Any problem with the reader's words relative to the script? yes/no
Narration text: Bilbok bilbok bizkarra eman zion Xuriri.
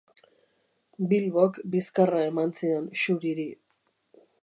yes